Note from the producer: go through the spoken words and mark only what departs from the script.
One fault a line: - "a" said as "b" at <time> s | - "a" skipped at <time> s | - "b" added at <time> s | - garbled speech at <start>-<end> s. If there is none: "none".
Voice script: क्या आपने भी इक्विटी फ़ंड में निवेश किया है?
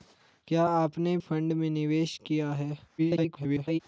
- "भी इक्विटी" skipped at 1.2 s
- garbled speech at 3.0-3.8 s